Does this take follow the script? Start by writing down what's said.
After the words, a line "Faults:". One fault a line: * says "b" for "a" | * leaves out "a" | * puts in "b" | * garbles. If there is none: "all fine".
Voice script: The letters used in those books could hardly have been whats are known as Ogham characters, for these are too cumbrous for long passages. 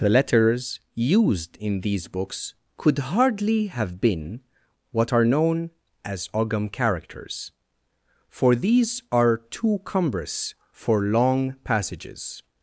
The letters used in these books could hardly have been what are known as Ogham characters, for these are too cumbrous for long passages.
Faults:
* says "these" for "those"
* says "what" for "whats"